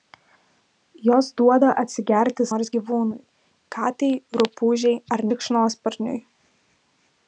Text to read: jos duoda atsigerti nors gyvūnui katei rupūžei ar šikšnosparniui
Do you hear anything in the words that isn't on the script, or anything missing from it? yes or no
no